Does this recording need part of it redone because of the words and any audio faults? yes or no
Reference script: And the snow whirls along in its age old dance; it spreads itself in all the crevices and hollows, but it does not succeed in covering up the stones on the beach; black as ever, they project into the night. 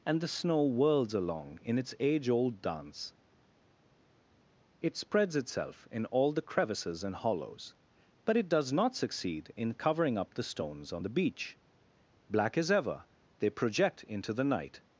no